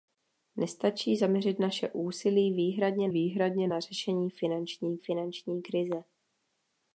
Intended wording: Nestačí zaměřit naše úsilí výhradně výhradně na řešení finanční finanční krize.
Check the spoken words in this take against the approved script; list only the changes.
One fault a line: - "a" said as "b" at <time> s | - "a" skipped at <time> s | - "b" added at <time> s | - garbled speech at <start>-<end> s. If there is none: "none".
none